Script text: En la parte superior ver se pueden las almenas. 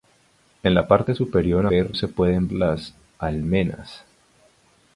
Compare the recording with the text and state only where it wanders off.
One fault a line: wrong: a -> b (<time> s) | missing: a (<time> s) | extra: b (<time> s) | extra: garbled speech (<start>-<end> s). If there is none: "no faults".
no faults